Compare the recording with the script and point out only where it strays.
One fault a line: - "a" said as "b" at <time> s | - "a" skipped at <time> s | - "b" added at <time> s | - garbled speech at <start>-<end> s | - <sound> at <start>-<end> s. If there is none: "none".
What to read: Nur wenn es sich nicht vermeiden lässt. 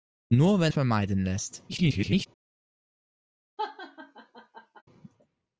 - "es sich nicht" skipped at 0.7 s
- garbled speech at 1.7-2.3 s
- laugh at 3.6-4.8 s